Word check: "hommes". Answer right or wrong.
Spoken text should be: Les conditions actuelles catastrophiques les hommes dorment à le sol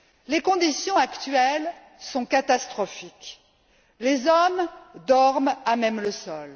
right